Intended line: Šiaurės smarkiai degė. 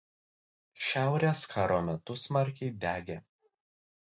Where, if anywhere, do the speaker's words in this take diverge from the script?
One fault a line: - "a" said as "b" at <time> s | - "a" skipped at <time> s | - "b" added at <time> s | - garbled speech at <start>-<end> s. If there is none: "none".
- "karo metu" added at 1.5 s